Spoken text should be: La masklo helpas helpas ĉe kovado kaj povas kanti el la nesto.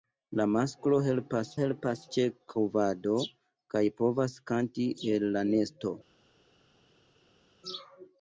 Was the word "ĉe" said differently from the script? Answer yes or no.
no